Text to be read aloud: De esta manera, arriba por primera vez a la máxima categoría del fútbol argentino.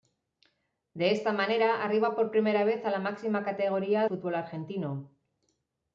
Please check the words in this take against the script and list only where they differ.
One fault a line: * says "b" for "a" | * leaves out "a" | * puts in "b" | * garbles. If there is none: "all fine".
* leaves out "del"